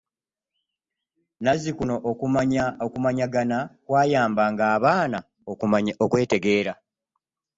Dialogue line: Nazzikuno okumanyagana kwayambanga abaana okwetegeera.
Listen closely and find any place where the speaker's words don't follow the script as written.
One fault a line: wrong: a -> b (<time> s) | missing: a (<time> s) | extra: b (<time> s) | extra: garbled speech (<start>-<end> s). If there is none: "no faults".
no faults